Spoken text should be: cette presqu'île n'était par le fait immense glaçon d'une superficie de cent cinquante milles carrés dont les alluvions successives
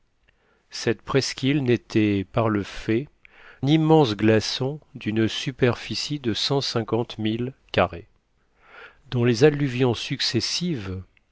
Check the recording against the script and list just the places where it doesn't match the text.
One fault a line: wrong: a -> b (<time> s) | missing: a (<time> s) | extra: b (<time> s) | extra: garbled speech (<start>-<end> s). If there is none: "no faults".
no faults